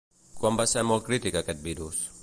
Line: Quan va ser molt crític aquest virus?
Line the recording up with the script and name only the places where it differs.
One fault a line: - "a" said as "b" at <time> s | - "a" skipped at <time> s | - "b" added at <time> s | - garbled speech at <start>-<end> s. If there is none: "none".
none